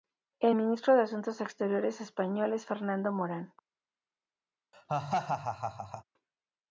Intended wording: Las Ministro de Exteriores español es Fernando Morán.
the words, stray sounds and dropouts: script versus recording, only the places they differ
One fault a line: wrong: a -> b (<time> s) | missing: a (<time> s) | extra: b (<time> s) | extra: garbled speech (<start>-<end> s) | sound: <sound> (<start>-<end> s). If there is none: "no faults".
wrong: Las -> El (0.4 s)
extra: Asuntos (1.0 s)
sound: laugh (4.7-6.0 s)